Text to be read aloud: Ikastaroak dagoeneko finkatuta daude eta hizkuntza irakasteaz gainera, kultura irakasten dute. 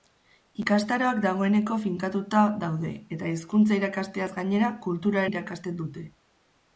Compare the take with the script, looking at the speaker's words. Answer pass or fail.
pass